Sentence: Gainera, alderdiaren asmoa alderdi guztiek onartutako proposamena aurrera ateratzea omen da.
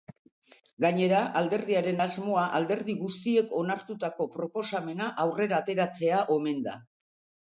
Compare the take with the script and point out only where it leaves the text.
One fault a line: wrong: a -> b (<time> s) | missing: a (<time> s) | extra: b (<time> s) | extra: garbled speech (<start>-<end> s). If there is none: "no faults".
no faults